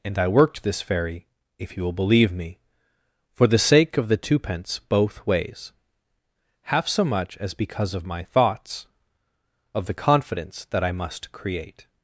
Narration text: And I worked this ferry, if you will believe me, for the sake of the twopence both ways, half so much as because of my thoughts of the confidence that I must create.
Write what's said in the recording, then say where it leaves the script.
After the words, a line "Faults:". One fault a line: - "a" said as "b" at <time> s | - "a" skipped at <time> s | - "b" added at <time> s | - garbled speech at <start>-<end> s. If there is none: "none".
And I worked this ferry, if you will believe me, for the sake of the twopence both ways, half so much as because of my thoughts of the confidence that I must create.
Faults:
none